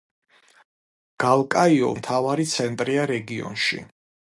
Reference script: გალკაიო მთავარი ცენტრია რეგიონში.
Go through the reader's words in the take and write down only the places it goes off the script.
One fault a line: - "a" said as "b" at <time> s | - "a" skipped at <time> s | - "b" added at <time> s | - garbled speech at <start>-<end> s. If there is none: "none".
none